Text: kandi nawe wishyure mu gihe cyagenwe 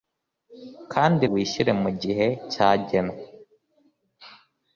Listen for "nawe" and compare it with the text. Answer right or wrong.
wrong